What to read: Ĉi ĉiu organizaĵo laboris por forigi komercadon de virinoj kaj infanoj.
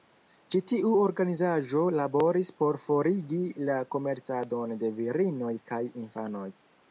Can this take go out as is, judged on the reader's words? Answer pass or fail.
fail